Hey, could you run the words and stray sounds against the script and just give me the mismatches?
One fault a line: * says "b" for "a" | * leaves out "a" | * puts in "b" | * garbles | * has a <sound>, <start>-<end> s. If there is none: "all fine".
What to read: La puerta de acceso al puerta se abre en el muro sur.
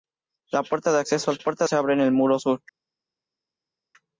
all fine